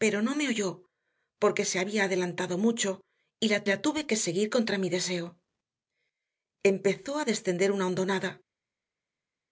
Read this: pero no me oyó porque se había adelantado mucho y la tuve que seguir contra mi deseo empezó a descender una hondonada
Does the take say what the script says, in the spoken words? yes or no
no